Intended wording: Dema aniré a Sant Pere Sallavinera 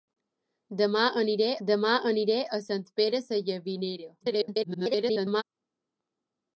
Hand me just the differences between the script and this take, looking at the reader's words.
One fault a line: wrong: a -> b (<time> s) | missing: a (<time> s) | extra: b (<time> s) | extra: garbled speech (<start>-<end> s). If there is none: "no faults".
extra: dema aniré (1.7 s)
extra: garbled speech (4.2-5.4 s)